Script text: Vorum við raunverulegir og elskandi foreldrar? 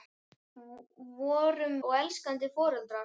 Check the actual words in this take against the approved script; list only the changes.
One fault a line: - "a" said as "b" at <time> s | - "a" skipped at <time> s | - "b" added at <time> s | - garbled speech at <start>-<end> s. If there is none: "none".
- "við raunverulegir" skipped at 1.8 s